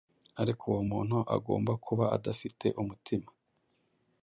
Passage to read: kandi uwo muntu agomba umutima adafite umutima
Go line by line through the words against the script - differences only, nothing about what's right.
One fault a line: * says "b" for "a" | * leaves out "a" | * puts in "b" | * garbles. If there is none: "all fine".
* says "ariko" for "kandi"
* says "kuba" for "umutima"